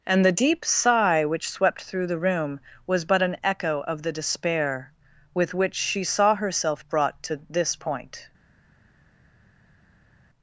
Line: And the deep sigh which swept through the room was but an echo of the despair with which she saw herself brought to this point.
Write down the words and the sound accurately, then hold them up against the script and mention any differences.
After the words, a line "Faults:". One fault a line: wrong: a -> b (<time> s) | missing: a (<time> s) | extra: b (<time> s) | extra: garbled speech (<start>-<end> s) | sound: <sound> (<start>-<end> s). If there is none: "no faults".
And the deep sigh which swept through the room was but an echo of the despair with which she saw herself brought to this point.
Faults:
no faults